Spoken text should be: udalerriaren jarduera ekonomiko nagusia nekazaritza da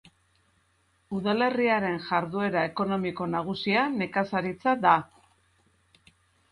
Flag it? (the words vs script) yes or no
no